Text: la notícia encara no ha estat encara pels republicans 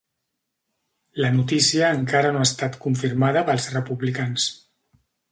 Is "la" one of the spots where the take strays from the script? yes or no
no